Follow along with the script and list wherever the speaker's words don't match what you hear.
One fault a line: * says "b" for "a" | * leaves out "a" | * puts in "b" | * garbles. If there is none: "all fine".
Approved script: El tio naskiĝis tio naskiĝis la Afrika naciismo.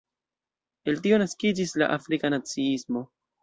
* leaves out "tio naskiĝis"